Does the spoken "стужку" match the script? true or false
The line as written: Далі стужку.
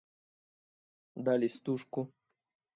true